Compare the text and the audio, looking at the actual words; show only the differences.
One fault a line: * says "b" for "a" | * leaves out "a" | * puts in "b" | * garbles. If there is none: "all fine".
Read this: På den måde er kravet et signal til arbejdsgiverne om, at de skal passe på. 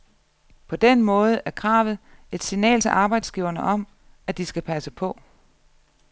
all fine